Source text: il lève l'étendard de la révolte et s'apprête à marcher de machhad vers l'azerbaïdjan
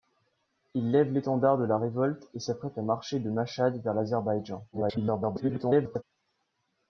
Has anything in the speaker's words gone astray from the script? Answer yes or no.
yes